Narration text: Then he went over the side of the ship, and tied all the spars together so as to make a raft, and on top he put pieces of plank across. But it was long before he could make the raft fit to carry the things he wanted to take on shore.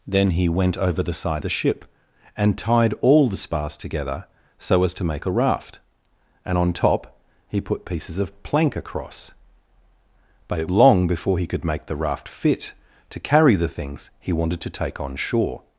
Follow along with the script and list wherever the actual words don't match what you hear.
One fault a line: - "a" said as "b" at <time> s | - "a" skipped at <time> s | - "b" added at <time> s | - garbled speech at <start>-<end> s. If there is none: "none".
- "of" skipped at 1.4 s
- "was" skipped at 10.7 s